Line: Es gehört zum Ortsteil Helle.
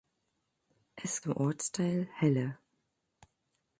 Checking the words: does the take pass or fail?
fail